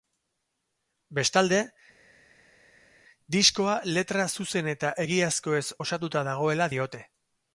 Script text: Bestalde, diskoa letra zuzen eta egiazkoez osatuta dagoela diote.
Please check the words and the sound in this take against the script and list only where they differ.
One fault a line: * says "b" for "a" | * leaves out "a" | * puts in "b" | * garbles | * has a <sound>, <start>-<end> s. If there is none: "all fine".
all fine